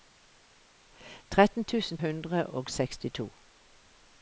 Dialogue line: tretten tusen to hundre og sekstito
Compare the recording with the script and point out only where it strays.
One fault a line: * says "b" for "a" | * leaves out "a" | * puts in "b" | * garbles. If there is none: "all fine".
* leaves out "to"